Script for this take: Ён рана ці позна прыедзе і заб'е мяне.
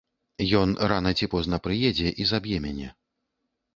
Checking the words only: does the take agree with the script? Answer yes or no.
yes